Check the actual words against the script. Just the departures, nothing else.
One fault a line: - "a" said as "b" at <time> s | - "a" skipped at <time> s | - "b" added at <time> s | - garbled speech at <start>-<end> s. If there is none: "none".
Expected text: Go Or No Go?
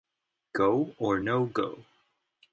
none